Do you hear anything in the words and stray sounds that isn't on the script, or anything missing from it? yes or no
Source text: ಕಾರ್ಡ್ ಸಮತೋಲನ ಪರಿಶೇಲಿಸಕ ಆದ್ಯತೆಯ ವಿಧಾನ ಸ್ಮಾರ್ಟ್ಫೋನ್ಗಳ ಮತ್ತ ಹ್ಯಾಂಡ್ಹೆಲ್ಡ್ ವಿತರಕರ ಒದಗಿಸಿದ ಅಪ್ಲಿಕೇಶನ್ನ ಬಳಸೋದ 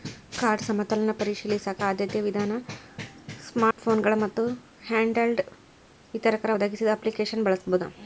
yes